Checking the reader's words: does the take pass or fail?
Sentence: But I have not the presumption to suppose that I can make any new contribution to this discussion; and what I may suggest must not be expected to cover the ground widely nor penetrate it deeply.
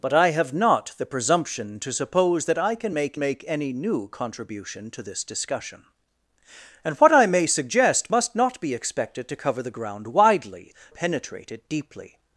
fail